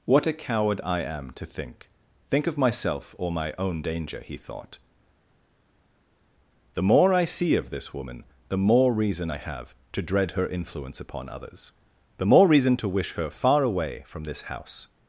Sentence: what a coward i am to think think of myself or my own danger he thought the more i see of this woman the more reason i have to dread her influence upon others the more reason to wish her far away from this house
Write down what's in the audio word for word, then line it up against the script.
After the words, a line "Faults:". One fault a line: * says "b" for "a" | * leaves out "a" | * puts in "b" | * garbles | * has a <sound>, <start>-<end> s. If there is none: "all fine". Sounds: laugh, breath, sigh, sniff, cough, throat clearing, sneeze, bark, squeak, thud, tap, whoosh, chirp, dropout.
what a coward i am to think think of myself or my own danger he thought the more i see of this woman the more reason i have to dread her influence upon others the more reason to wish her far away from this house
Faults:
all fine